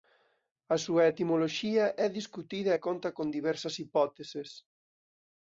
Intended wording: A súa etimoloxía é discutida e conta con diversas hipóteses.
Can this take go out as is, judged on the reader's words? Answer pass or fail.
pass